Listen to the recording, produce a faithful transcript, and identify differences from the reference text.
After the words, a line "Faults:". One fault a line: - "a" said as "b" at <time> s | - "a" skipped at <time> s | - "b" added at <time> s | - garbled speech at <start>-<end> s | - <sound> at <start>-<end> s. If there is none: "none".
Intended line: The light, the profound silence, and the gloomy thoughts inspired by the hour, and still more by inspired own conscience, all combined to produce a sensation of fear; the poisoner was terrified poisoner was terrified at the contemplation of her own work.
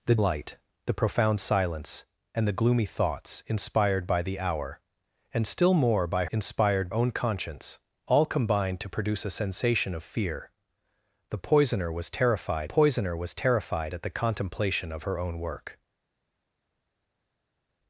The light, the profound silence, and the gloomy thoughts inspired by the hour, and still more by inspired own conscience, all combined to produce a sensation of fear; the poisoner was terrified poisoner was terrified at the contemplation of her own work.
Faults:
none